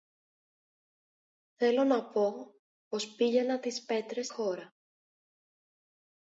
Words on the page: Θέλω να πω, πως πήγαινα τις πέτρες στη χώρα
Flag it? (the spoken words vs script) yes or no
yes